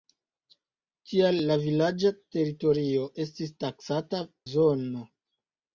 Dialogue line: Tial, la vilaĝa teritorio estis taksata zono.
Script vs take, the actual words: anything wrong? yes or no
no